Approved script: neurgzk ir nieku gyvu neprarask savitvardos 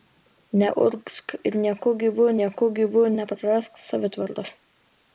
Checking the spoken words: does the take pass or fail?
fail